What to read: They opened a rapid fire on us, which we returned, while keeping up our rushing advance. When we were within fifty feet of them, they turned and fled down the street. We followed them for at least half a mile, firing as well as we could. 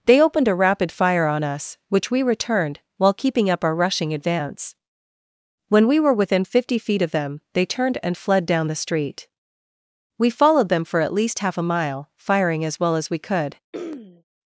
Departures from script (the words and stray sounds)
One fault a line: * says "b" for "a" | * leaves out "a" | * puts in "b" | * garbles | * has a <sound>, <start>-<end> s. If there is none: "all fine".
* has a throat clearing, 13.7-14.2 s